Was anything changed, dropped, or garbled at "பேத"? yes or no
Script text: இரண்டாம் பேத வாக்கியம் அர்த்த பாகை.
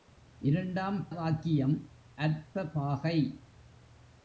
yes